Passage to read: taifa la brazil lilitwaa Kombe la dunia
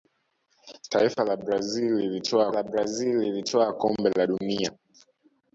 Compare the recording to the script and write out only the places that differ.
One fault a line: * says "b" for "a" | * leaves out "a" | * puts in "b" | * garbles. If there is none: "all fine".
* puts in "la brazil lilitwaa"